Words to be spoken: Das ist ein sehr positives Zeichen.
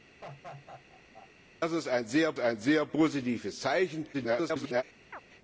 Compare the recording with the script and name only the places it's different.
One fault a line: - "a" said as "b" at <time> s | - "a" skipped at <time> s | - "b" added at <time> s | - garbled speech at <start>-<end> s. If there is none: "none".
- "ein sehr" added at 2.4 s
- garbled speech at 4.1-4.8 s